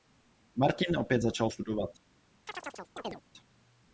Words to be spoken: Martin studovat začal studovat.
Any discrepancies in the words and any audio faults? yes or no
yes